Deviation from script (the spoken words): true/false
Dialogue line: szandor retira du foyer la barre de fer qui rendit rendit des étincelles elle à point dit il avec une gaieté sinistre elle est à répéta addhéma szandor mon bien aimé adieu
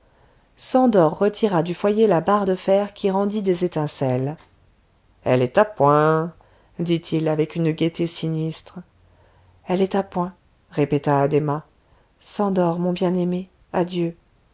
true